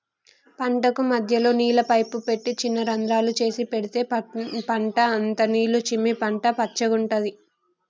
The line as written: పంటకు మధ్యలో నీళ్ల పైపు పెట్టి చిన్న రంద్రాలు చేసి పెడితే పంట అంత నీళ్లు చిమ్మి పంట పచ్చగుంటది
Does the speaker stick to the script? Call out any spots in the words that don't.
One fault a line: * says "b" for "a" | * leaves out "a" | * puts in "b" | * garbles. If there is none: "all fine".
all fine